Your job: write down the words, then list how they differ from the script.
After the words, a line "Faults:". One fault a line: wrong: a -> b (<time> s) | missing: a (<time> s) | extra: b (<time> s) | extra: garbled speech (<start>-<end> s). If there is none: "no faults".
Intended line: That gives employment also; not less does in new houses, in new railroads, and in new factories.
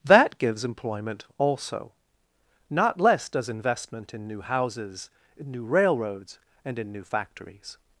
That gives employment also; not less does investment in new houses, in new railroads, and in new factories.
Faults:
extra: investment (3.5 s)